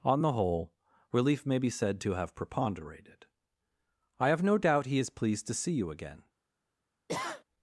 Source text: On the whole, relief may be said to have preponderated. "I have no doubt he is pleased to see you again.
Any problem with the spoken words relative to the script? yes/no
no